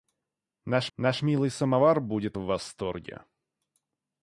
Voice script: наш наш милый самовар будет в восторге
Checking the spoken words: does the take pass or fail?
pass